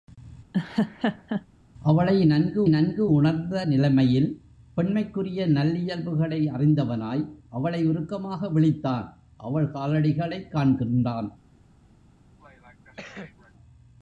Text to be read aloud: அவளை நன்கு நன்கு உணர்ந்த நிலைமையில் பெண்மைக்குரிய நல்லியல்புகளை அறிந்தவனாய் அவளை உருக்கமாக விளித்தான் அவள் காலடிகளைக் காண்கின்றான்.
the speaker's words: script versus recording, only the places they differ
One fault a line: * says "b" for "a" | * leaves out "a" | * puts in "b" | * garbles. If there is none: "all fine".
all fine